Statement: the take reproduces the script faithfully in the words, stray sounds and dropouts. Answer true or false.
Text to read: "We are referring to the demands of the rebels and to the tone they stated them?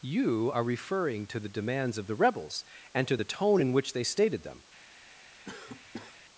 false